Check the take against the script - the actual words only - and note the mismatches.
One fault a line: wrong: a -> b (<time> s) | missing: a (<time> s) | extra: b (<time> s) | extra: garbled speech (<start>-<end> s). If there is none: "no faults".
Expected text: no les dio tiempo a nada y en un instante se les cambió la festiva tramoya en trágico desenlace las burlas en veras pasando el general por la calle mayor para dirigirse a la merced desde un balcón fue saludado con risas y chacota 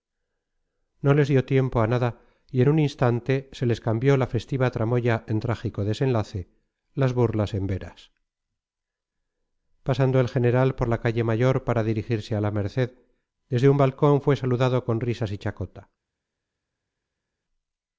no faults